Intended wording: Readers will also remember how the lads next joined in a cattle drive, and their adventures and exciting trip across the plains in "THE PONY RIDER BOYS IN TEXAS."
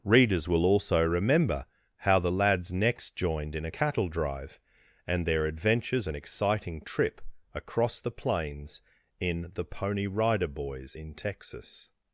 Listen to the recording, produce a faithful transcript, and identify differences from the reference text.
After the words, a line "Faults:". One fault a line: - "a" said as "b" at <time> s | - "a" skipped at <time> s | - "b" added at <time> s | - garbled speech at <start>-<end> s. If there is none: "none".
Readers will also remember how the lads next joined in a cattle drive, and their adventures and exciting trip across the plains in "THE PONY RIDER BOYS IN TEXAS."
Faults:
none